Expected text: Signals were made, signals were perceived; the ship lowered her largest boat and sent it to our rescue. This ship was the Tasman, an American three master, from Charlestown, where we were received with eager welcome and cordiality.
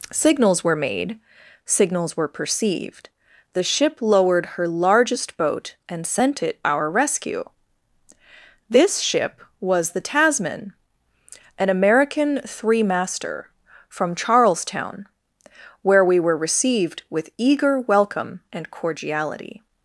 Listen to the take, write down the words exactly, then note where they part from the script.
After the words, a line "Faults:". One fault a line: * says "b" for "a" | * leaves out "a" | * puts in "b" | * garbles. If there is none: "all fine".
Signals were made, signals were perceived; the ship lowered her largest boat and sent it our rescue. This ship was the Tasman, an American three master, from Charlestown, where we were received with eager welcome and cordiality.
Faults:
* leaves out "to"